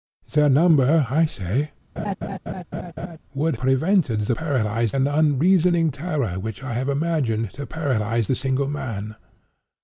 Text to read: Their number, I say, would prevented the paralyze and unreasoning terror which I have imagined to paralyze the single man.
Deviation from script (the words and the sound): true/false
true